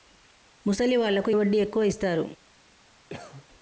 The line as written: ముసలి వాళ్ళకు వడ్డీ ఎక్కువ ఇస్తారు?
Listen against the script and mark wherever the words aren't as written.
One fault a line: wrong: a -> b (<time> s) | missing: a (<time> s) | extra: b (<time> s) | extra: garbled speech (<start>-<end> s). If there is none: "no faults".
no faults